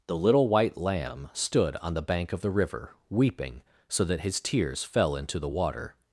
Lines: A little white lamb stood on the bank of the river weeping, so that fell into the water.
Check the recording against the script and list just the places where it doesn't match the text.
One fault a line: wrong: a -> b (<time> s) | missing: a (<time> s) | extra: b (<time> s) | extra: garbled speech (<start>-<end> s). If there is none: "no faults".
wrong: A -> The (0.1 s)
extra: his tears (4.2 s)